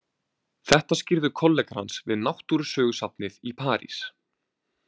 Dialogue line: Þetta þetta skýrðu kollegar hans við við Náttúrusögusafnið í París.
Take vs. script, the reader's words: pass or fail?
fail